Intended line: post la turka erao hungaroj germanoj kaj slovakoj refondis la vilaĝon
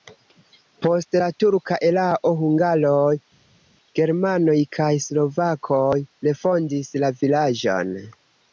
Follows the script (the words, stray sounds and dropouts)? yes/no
yes